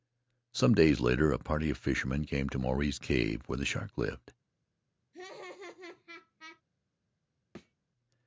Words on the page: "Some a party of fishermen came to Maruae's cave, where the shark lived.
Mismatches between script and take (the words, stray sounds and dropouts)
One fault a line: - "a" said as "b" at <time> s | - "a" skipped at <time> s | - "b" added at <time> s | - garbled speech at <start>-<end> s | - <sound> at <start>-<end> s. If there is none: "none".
- "days later" added at 0.7 s
- laugh at 5.1-6.6 s
- thud at 7.5-7.7 s